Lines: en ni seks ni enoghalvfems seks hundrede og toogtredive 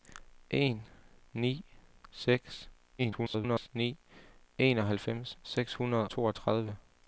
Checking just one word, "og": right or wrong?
wrong